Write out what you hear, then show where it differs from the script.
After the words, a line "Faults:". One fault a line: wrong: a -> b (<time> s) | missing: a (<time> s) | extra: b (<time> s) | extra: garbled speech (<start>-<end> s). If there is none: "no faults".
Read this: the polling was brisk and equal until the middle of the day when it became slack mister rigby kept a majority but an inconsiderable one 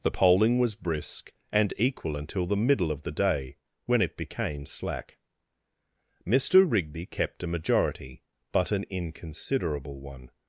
the polling was brisk and equal until the middle of the day when it became slack mister rigby kept a majority but an inconsiderable one
Faults:
no faults